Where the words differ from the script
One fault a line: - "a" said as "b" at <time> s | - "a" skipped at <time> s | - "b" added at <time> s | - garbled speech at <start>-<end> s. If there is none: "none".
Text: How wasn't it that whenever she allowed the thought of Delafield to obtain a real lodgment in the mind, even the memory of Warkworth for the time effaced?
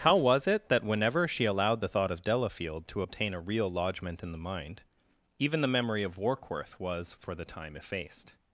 - "wasn't" said as "was" at 0.1 s
- "was" added at 6.8 s